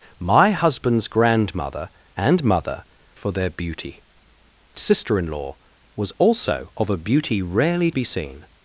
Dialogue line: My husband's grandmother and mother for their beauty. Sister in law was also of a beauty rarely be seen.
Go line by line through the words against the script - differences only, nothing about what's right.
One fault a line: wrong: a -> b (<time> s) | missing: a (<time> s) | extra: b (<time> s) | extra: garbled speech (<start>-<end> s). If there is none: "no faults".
no faults